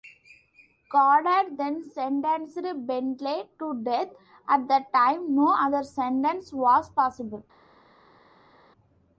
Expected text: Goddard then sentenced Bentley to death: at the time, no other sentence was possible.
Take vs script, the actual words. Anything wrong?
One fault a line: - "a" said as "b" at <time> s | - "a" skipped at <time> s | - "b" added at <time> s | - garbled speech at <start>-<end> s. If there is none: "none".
none